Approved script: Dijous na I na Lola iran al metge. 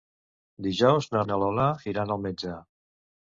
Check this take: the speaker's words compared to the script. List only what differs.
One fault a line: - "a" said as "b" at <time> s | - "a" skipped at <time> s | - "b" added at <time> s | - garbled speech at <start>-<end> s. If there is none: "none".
none